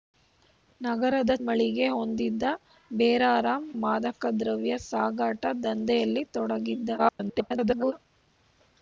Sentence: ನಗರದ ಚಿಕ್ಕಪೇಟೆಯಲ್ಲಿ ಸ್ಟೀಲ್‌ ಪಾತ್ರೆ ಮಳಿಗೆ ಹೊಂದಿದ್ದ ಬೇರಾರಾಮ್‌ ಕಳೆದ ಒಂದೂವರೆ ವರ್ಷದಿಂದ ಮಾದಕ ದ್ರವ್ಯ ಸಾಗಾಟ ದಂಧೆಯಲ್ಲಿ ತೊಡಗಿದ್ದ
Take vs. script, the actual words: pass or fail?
fail